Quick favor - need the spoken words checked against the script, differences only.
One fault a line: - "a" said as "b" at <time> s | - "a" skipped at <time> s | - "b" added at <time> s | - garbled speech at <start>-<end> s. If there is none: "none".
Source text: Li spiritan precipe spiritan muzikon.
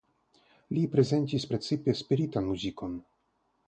- "spiritan" said as "prezentis" at 0.9 s